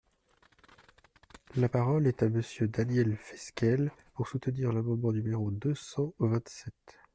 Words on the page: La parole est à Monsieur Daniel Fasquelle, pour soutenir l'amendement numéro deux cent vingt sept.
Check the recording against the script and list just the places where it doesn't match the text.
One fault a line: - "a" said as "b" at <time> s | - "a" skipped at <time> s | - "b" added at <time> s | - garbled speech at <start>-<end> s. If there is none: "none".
none